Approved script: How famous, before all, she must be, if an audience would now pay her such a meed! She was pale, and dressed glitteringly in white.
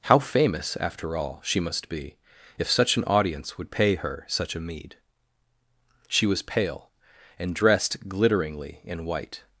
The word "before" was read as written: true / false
false